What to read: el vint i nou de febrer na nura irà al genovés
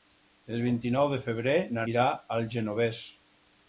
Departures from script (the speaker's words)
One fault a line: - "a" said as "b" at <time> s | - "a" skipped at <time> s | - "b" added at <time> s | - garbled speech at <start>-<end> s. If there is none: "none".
- "nura" skipped at 1.9 s